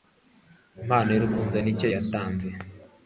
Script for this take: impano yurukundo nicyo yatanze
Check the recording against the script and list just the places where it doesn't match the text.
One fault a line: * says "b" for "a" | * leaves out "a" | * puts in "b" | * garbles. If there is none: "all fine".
all fine